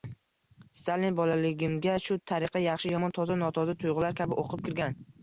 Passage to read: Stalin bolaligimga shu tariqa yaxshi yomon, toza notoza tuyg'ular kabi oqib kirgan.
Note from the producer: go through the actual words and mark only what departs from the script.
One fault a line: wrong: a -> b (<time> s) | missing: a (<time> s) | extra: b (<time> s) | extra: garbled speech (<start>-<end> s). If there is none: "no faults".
no faults